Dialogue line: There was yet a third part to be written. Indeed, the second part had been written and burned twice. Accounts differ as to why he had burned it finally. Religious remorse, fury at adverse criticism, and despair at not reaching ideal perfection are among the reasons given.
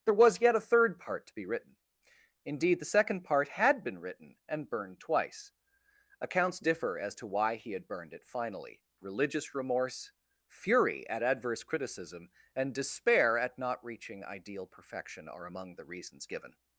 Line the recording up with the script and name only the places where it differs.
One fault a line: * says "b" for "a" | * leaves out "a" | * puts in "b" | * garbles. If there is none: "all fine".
all fine